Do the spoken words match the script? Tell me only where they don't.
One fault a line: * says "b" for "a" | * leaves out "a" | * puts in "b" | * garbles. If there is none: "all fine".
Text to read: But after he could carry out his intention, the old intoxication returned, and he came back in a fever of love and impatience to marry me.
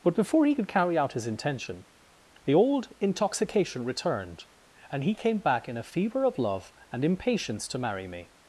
* says "before" for "after"